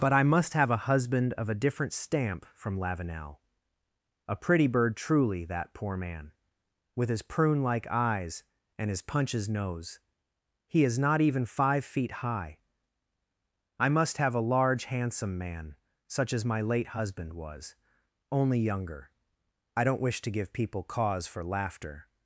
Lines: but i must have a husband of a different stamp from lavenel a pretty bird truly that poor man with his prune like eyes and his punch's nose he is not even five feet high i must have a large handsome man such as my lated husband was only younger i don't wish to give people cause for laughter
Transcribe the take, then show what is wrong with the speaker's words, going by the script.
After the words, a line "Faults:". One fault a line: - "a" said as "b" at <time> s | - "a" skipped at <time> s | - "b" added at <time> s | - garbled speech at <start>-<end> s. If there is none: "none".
but i must have a husband of a different stamp from lavenel a pretty bird truly that poor man with his prune like eyes and his punch's nose he is not even five feet high i must have a large handsome man such as my late husband was only younger i don't wish to give people cause for laughter
Faults:
- "lated" said as "late" at 16.6 s